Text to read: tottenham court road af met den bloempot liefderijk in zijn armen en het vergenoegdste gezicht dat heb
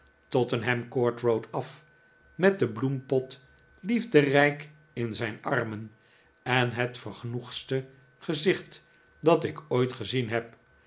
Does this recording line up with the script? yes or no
no